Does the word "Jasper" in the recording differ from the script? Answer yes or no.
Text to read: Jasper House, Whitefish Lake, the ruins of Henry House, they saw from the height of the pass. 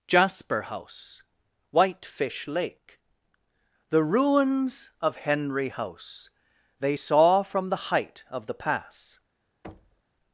no